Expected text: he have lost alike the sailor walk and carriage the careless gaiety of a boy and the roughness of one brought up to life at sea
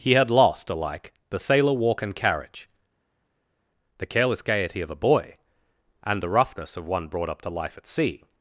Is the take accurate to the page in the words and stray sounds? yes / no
no